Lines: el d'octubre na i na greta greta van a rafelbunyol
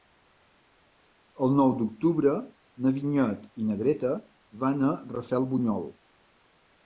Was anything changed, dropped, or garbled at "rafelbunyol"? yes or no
no